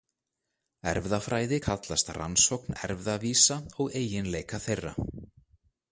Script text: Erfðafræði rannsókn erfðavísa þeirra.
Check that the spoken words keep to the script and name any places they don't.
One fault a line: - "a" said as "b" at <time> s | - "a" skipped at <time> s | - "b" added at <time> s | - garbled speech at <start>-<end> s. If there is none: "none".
- "kallast" added at 1.7 s
- "og eiginleika" added at 3.8 s